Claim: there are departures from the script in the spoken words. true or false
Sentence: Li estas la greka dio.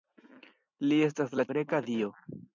false